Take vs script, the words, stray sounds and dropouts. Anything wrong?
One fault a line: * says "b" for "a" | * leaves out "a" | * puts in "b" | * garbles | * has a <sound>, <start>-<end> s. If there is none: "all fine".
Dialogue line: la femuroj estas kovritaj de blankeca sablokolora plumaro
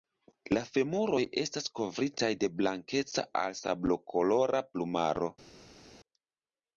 * puts in "al"